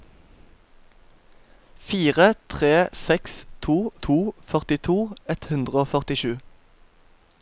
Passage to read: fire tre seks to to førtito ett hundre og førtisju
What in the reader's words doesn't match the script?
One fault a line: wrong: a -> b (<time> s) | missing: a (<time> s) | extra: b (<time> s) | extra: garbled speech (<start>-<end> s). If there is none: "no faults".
no faults